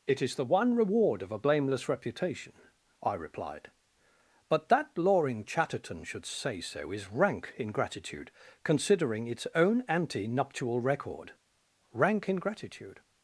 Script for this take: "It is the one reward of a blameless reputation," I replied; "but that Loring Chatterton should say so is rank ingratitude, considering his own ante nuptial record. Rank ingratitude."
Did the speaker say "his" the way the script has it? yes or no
no